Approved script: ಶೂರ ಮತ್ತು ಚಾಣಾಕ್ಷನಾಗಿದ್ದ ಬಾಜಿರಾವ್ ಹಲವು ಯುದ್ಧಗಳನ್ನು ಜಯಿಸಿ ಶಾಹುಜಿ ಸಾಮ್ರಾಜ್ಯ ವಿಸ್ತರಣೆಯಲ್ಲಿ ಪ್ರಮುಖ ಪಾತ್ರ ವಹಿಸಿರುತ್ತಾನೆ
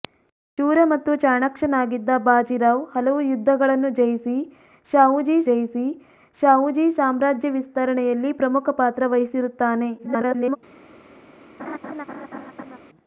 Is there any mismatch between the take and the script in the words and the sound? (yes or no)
yes